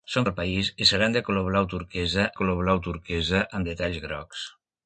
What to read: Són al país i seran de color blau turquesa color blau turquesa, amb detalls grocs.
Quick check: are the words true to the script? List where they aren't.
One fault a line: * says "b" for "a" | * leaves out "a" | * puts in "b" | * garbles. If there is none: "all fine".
all fine